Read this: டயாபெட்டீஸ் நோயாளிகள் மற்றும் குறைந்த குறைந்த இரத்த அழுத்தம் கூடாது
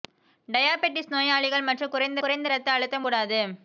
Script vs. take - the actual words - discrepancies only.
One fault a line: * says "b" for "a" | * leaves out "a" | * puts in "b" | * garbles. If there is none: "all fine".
all fine